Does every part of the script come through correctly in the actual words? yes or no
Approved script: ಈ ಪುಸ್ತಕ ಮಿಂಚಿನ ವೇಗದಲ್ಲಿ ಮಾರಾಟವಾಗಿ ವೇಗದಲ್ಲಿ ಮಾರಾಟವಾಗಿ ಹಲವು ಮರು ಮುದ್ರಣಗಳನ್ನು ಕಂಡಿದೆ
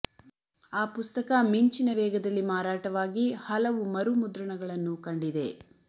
no